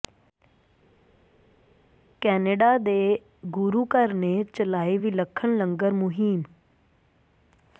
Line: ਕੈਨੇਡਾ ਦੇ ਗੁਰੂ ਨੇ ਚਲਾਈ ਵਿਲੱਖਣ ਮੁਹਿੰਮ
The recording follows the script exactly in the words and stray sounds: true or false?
false